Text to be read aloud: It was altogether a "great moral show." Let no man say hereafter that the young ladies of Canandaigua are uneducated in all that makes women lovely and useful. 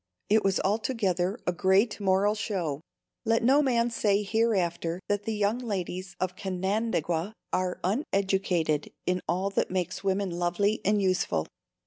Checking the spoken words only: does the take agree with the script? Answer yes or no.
yes